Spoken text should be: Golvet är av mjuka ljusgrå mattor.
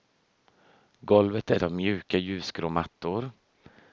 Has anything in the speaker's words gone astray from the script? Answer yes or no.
no